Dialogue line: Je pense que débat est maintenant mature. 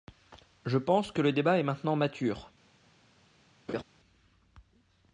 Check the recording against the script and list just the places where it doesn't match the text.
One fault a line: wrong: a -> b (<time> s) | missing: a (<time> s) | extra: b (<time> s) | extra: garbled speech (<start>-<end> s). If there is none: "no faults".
extra: le (1.2 s)